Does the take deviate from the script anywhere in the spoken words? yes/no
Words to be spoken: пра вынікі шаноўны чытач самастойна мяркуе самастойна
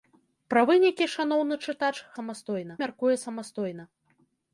no